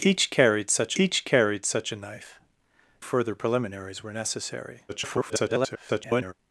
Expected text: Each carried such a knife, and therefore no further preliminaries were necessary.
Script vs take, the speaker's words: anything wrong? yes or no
yes